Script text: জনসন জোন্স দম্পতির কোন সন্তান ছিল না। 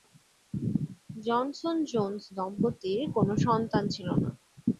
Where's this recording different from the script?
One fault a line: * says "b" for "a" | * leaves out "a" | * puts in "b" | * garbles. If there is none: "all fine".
all fine